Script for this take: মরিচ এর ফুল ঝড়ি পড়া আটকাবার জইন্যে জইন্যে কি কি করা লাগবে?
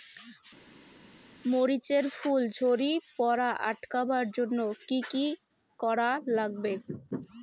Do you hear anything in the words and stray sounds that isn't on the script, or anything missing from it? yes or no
yes